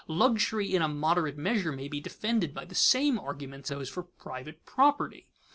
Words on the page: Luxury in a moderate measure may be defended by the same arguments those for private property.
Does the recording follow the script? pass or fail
pass